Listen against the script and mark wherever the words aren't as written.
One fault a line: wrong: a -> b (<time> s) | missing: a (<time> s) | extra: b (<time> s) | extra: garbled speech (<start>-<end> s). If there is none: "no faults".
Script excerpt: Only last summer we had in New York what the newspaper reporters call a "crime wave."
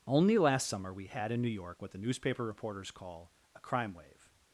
no faults